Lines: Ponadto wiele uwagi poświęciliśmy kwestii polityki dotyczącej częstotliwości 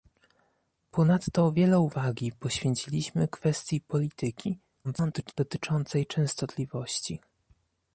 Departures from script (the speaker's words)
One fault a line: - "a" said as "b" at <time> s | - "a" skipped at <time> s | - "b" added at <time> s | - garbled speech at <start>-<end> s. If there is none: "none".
- garbled speech at 4.8-5.3 s